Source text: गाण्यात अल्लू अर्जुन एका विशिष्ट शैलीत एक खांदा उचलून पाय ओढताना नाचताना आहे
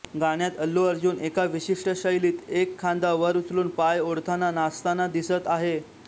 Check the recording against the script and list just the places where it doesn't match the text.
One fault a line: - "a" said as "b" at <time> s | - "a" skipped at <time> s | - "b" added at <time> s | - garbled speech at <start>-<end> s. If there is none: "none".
- "वर" added at 3.1 s
- "दिसत" added at 5.1 s